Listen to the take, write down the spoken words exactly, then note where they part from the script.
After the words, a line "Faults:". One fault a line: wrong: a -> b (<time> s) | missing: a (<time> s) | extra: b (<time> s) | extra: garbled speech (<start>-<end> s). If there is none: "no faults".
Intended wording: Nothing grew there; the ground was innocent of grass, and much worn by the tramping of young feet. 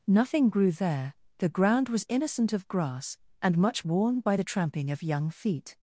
Nothing grew there; the ground was innocent of grass, and much worn by the tramping of young feet.
Faults:
no faults